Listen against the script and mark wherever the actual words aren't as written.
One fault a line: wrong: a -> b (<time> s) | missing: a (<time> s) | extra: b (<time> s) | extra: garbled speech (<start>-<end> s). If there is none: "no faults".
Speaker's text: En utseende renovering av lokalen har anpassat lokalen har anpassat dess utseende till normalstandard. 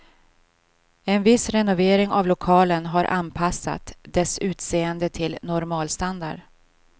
wrong: utseende -> viss (1.2 s)
missing: lokalen har anpassat (3.9 s)